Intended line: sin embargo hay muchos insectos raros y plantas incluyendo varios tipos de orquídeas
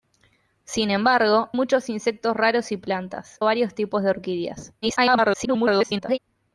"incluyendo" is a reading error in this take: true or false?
true